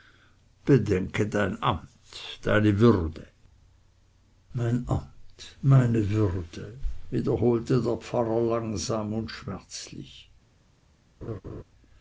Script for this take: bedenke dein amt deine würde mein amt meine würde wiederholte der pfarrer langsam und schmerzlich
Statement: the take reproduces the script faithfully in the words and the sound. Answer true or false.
false